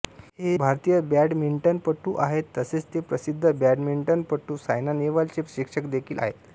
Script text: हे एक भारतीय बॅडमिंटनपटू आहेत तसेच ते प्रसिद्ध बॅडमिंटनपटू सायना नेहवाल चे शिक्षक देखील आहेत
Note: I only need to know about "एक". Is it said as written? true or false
false